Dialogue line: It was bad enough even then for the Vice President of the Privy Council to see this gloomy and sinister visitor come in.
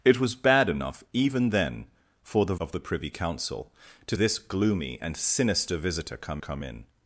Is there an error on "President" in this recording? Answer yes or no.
yes